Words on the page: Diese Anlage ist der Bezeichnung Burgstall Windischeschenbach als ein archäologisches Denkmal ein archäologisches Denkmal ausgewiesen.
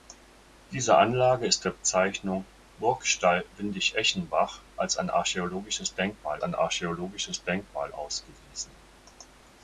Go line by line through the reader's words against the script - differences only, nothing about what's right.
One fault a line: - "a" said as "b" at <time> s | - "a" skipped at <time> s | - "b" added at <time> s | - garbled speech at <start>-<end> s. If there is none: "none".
none